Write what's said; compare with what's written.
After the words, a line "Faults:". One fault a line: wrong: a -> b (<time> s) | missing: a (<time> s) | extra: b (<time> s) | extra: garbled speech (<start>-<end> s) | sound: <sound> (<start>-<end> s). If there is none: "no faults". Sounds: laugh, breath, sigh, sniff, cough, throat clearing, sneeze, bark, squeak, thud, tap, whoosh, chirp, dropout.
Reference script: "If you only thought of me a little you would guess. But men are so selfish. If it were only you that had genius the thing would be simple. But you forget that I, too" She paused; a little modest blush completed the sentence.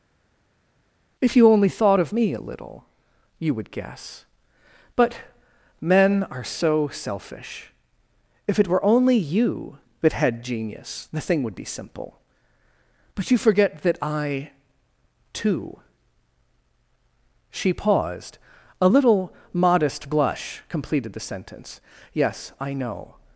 "If you only thought of me a little you would guess. But men are so selfish. If it were only you that had genius the thing would be simple. But you forget that I, too" She paused; a little modest blush completed the sentence. "Yes, I know
Faults:
extra: Yes I know (22.1 s)